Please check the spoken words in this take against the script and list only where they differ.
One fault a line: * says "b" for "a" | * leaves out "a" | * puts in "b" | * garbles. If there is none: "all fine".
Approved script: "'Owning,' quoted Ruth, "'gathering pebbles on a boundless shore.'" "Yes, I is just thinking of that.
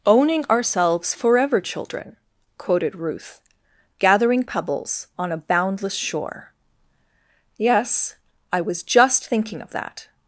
* puts in "ourselves forever children"
* says "was" for "is"